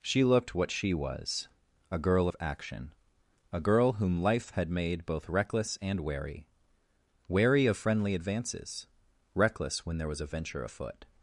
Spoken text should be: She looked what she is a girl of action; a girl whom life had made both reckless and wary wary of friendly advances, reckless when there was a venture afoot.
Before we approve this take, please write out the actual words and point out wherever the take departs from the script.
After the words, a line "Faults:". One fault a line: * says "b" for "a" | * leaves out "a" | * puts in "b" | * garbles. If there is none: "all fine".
She looked what she was a girl of action; a girl whom life had made both reckless and wary wary of friendly advances, reckless when there was a venture afoot.
Faults:
* says "was" for "is"